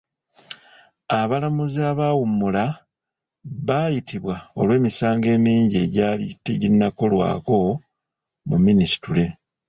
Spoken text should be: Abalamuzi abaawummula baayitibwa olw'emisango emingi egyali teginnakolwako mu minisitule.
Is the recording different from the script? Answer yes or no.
no